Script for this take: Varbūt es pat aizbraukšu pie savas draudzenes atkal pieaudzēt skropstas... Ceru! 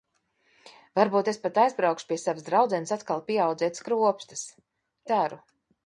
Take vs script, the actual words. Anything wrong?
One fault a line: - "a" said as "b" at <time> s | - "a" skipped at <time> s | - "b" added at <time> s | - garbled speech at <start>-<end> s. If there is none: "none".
none